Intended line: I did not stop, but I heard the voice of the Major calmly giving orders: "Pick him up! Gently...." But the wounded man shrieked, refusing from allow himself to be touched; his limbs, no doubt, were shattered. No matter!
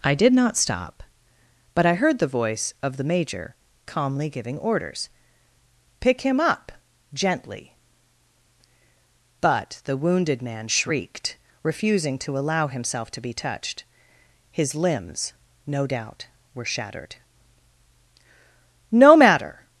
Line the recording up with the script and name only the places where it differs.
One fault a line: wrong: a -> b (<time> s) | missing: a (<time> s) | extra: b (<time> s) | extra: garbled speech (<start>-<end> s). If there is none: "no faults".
wrong: from -> to (12.2 s)